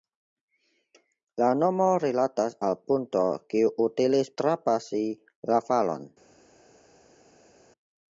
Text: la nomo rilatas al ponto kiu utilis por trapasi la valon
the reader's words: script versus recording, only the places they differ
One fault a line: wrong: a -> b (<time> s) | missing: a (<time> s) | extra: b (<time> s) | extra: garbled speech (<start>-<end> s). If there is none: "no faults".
missing: por (4.3 s)